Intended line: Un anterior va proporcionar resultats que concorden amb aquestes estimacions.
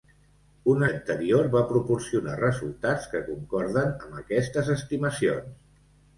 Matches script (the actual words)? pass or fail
pass